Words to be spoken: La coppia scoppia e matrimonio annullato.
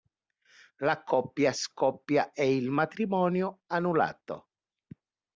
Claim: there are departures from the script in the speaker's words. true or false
true